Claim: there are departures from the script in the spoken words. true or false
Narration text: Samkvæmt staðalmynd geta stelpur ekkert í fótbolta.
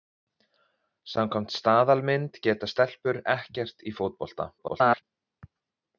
true